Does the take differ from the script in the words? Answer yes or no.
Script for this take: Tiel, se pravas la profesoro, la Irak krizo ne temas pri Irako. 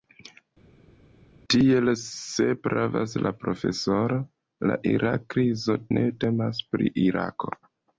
no